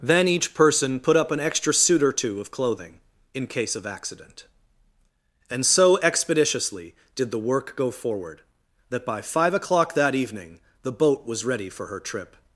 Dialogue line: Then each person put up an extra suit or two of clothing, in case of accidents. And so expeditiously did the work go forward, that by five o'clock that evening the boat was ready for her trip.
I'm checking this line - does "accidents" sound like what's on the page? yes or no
no